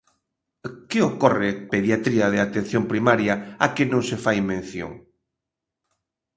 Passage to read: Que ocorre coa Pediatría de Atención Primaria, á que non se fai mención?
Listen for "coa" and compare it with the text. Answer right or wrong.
wrong